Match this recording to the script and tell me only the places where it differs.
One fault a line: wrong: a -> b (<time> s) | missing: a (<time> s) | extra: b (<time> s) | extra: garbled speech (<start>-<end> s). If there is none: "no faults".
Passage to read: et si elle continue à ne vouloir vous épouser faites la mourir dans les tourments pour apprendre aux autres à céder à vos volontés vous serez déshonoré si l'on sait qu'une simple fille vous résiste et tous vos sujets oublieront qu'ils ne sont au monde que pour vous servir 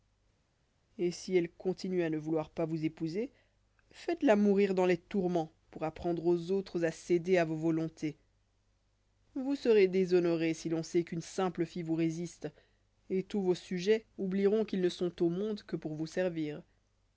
extra: pas (2.5 s)